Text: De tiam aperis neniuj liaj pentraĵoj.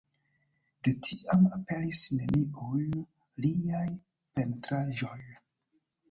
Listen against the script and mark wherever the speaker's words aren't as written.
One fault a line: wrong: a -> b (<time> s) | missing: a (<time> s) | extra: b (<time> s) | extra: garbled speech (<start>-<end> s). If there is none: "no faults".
no faults